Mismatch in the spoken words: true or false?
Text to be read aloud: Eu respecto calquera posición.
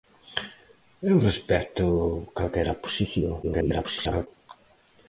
true